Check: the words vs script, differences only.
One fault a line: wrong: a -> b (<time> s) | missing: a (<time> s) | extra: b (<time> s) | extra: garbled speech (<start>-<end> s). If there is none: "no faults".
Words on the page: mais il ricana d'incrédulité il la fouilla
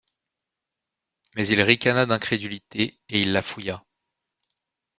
extra: et (3.1 s)